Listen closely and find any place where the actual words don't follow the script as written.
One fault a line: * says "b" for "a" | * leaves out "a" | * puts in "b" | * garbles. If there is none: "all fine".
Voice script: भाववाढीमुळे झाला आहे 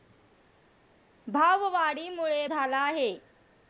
all fine